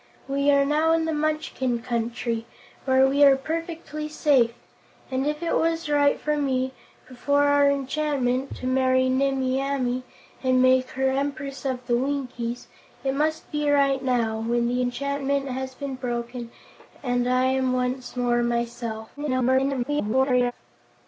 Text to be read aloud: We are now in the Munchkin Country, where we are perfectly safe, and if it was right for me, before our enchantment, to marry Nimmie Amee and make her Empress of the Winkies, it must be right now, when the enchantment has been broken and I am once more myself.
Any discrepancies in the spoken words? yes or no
yes